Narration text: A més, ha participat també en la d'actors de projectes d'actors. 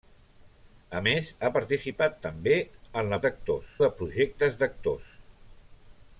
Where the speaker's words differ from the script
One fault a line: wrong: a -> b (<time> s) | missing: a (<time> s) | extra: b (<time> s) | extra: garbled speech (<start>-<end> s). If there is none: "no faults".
no faults